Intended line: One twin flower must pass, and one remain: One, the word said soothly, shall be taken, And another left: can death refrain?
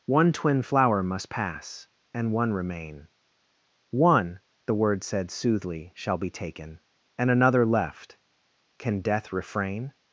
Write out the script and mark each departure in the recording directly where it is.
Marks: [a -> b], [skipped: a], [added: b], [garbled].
One twin flower must pass, and one remain: One, the word said soothly, shall be taken, And another left: can death refrain?